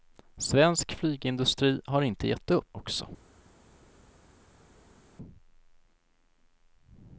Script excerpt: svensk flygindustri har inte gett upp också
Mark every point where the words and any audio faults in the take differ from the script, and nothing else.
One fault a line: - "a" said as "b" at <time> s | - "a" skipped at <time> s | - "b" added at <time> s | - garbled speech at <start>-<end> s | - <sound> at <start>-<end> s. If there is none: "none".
none